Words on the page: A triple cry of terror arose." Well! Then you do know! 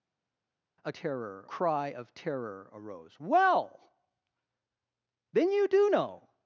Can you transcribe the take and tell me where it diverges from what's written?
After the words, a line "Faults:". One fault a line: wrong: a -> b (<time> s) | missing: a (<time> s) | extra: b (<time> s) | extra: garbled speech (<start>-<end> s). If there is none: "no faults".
A terror cry of terror arose." Well! Then you do know!
Faults:
wrong: triple -> terror (0.9 s)